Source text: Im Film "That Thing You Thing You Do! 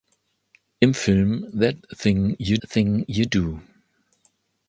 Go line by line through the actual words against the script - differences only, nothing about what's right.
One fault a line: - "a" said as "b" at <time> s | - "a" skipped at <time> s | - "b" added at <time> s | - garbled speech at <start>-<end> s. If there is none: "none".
none